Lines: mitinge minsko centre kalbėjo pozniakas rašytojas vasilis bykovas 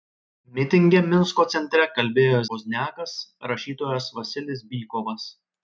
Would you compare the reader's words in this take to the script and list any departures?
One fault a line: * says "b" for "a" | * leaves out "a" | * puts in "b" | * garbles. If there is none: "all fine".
all fine